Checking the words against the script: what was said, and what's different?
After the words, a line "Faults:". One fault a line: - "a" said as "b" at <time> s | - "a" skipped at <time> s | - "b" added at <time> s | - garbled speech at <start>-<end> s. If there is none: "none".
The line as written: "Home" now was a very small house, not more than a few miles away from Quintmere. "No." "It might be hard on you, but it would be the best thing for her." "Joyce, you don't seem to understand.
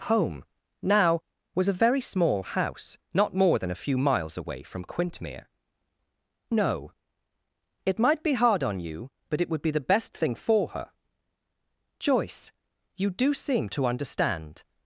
"Home" now was a very small house, not more than a few miles away from Quintmere. "No." "It might be hard on you, but it would be the best thing for her." "Joyce, you do seem to understand.
Faults:
- "don't" said as "do" at 13.1 s